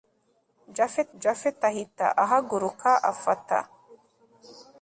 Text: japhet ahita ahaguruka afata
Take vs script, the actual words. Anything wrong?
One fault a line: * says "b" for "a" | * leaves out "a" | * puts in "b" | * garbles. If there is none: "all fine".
* puts in "japhet"